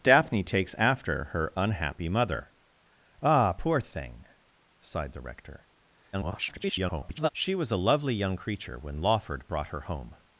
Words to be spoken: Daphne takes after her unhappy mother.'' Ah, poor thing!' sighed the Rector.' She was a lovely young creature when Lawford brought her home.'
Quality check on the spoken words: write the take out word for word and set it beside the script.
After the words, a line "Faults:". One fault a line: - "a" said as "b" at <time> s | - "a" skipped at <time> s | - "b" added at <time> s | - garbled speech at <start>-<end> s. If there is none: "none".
Daphne takes after her unhappy mother.'' Ah, poor thing!' sighed the Rector.' [garbled] She was a lovely young creature when Lawford brought her home.'
Faults:
- garbled speech at 6.1-7.3 s